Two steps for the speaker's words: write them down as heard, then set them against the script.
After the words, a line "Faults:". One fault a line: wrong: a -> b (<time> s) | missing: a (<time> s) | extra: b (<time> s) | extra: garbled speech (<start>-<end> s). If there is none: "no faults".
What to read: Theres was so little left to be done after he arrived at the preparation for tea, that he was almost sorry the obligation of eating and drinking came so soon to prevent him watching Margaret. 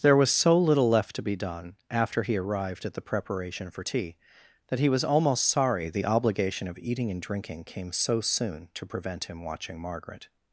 There was so little left to be done after he arrived at the preparation for tea, that he was almost sorry the obligation of eating and drinking came so soon to prevent him watching Margaret.
Faults:
wrong: Theres -> There (0.0 s)